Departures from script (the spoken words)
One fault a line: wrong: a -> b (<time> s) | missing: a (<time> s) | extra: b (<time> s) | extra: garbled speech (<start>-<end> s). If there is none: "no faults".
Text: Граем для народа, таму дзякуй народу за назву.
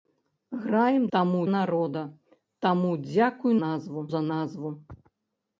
wrong: для -> таму (1.1 s)
wrong: народу -> назву (3.6 s)